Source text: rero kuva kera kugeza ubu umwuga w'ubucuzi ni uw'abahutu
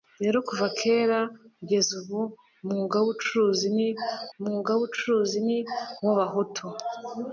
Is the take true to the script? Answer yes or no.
no